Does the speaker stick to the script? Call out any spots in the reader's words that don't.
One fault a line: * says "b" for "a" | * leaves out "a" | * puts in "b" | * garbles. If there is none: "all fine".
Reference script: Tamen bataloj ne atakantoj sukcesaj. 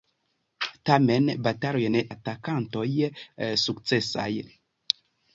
all fine